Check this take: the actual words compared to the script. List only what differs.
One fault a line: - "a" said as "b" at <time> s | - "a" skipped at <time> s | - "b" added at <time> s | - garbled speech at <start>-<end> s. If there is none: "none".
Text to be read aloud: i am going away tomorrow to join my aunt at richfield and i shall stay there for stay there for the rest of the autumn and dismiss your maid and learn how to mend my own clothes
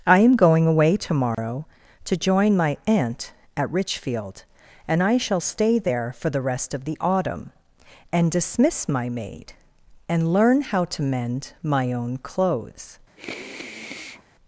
- "stay there for" skipped at 6.3 s
- "your" said as "my" at 8.9 s